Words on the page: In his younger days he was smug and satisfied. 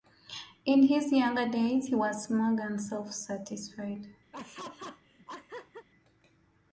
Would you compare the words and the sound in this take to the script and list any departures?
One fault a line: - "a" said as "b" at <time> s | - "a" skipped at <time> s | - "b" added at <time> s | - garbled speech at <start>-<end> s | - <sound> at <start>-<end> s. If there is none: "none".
- "self" added at 2.8 s
- laugh at 4.3-5.9 s